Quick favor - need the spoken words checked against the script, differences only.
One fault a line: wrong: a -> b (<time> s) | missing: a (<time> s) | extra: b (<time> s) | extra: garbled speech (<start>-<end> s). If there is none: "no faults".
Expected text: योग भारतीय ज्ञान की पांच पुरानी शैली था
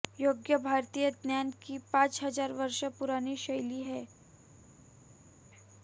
extra: हजार वर्ष (2.2 s)
wrong: था -> है (3.8 s)